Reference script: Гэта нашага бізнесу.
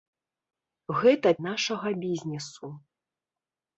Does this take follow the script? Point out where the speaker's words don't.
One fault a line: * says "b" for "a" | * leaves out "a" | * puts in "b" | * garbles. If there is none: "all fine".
all fine